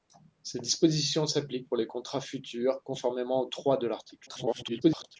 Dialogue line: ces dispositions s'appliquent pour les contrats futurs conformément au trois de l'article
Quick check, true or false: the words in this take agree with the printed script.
false